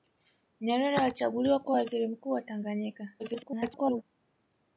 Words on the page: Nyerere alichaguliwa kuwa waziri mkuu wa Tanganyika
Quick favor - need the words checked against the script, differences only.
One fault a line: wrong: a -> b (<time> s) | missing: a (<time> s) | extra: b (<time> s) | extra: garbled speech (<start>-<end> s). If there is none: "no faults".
extra: garbled speech (3.2-4.0 s)